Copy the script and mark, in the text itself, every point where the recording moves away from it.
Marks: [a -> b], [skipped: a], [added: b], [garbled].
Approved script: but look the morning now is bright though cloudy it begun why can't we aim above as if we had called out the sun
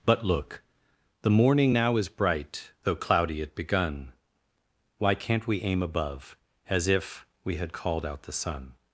but look the morning now is bright though cloudy it begun why can't we aim above as if we had called out the sun